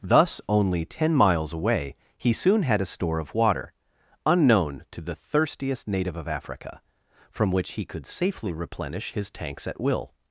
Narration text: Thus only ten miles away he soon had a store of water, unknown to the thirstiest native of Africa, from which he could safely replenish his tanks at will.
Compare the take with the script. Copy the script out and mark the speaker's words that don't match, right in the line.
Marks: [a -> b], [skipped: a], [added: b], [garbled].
Thus only ten miles away he soon had a store of water, unknown to the thirstiest native of Africa, from which he could safely replenish his tanks at will.